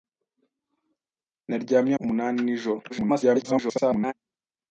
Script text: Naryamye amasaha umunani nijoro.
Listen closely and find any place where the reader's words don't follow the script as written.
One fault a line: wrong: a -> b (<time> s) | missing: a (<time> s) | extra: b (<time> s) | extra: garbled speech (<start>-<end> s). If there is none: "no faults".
missing: amasaha (1.9 s)
extra: garbled speech (2.9-4.1 s)